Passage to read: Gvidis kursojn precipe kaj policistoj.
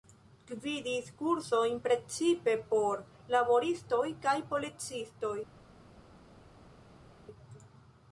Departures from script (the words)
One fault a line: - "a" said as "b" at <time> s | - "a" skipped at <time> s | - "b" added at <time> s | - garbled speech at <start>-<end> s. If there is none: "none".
- "por laboristoj" added at 2.7 s